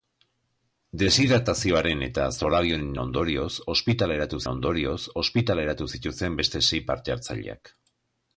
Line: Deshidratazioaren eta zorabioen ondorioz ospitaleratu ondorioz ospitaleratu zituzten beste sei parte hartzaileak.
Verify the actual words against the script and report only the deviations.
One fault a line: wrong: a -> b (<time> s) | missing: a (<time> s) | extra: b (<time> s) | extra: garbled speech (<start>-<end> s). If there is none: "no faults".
no faults